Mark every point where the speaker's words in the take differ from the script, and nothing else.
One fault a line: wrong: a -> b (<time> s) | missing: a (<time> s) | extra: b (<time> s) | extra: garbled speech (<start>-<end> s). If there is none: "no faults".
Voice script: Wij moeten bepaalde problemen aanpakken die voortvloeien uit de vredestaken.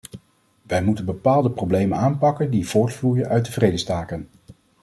no faults